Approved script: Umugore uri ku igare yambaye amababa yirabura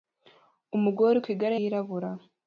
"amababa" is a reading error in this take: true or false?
true